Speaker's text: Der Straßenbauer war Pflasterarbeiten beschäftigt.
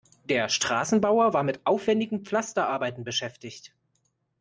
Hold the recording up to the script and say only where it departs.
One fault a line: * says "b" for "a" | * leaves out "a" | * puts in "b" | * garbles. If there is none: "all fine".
* puts in "mit aufwendigen"